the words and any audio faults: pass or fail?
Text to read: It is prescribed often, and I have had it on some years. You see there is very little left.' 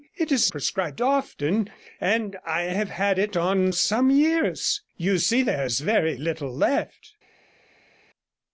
pass